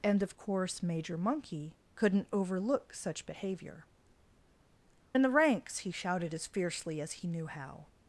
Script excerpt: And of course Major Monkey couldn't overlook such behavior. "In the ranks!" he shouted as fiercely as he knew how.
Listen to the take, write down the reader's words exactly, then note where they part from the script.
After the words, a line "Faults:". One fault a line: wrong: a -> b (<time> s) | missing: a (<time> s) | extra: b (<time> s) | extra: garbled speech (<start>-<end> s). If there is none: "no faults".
And of course Major Monkey couldn't overlook such behavior. "In the ranks!" he shouted as fiercely as he knew how.
Faults:
no faults